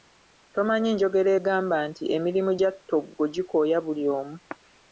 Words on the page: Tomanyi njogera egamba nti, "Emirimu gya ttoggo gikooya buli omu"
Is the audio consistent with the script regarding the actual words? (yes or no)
yes